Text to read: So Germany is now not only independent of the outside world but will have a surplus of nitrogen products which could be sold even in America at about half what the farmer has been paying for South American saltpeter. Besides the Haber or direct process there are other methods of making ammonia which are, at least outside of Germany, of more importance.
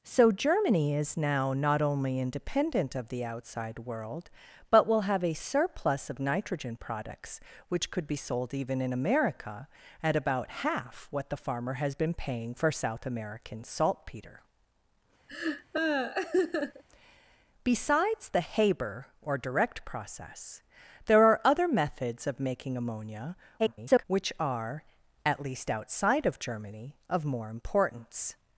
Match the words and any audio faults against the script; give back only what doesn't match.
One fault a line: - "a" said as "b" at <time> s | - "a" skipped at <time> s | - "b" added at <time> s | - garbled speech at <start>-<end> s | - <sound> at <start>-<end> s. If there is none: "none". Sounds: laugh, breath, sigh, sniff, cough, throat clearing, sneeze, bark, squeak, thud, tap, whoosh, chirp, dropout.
- laugh at 15.3-16.8 s
- garbled speech at 23.6-24.0 s